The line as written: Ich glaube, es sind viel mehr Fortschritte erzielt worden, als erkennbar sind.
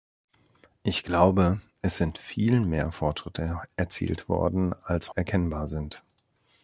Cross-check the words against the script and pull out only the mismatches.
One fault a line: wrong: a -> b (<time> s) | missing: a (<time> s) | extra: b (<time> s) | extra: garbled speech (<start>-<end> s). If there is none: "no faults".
no faults